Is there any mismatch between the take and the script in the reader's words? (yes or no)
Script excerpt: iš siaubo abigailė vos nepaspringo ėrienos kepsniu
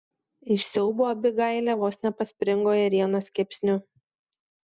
no